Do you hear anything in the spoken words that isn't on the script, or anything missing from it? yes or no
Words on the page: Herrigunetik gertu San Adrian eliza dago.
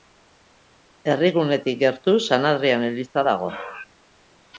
no